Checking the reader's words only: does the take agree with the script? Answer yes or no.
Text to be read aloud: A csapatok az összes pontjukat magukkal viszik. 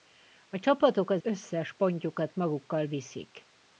yes